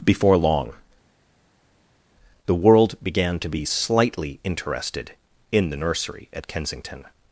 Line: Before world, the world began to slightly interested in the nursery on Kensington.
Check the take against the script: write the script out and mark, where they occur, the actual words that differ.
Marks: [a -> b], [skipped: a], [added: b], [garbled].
Before [world, -> long] the world began to [added: be] slightly interested in the nursery [on -> at] Kensington.